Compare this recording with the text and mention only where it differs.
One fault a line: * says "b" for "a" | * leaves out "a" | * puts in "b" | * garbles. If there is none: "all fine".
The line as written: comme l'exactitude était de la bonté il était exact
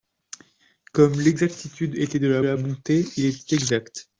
* puts in "la"